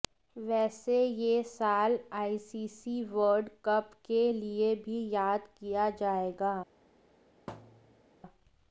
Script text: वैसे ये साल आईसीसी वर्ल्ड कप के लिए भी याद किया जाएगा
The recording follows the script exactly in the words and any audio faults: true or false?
false